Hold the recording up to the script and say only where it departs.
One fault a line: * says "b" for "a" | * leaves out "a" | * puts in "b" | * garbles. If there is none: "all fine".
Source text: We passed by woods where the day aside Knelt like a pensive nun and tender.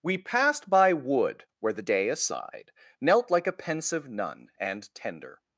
* says "wood" for "woods"